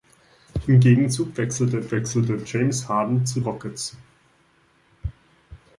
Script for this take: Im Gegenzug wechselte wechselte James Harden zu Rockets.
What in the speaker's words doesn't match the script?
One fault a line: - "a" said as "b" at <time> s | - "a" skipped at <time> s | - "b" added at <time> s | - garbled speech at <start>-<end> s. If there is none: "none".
none